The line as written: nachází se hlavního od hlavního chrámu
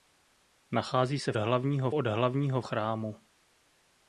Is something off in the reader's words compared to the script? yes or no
no